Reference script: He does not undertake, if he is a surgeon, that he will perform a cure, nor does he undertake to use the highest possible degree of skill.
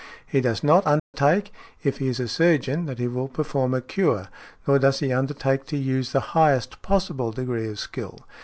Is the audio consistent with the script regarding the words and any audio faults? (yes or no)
no